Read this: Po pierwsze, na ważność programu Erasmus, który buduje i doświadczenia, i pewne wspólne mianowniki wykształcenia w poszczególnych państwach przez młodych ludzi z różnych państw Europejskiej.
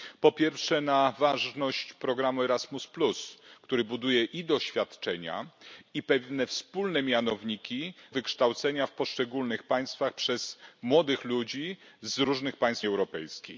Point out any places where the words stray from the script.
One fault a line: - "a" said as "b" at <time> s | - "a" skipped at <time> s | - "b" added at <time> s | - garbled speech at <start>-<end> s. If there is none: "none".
none